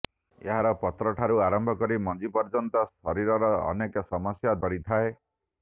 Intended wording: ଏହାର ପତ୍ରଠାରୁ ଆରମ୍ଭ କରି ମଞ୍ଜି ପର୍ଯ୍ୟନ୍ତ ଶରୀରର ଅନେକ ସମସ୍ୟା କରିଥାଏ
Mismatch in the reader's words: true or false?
false